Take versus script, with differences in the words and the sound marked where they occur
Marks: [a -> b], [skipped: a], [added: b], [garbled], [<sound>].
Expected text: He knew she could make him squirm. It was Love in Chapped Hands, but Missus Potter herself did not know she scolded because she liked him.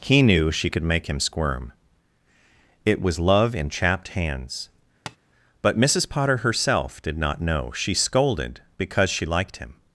He knew she could make him squirm. It was Love in Chapped Hands, [tap] but Missus Potter herself did not know she scolded because she liked him.